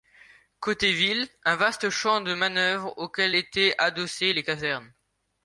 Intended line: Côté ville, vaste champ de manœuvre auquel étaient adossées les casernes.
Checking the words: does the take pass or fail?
fail